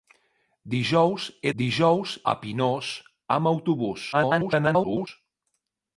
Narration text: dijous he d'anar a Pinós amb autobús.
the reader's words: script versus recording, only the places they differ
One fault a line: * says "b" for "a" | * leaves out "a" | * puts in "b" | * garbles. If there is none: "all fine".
* says "dijous" for "d'anar"
* garbles